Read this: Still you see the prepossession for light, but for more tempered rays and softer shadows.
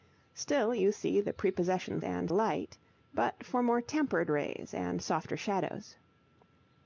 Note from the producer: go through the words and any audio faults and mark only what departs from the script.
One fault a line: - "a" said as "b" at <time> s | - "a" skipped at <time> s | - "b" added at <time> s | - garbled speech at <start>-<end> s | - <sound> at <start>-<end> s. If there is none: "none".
- "for" said as "and" at 2.0 s